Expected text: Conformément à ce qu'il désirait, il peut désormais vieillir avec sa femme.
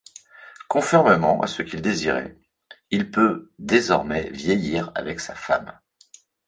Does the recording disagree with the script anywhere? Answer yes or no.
no